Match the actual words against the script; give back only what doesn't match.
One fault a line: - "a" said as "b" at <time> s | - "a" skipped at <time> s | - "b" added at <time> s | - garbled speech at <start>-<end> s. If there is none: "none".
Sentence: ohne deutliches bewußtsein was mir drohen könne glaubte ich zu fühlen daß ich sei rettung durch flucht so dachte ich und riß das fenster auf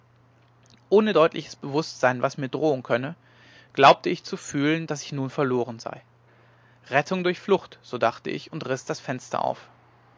- "nun verloren" added at 5.1 s